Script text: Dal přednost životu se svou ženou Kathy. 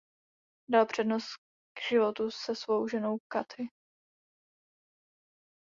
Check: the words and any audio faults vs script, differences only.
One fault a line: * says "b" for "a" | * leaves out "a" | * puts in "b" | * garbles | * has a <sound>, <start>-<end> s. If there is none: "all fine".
all fine